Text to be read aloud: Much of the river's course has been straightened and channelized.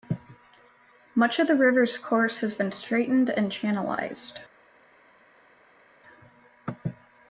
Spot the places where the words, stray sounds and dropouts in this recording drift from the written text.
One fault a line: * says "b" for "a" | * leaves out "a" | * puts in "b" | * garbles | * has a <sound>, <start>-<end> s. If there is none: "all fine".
all fine